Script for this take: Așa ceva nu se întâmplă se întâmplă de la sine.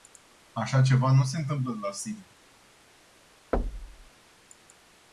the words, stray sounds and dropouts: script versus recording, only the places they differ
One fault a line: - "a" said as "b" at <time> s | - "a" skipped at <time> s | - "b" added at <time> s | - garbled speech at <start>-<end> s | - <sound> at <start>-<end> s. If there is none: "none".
- "se întâmplă" skipped at 1.7 s
- thud at 3.5-4.1 s